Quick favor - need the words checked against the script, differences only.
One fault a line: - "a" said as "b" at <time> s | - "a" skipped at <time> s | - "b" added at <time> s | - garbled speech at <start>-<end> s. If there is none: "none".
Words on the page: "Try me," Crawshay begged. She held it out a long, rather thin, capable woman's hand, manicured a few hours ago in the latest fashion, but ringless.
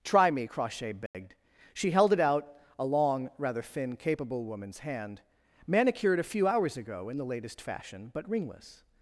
none